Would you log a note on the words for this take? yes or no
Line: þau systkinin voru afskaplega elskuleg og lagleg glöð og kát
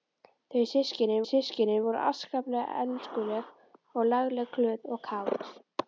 yes